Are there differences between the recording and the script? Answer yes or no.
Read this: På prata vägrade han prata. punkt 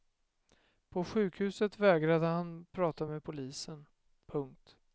yes